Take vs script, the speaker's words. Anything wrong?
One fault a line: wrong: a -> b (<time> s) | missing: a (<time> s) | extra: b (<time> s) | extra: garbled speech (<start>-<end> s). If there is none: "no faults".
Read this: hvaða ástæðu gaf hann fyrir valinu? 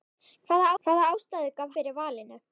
extra: hvaða (0.8 s)
missing: hann (1.7 s)